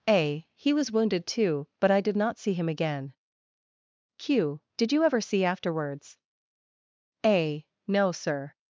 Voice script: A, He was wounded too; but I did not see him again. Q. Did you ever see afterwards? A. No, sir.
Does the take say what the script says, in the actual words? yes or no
yes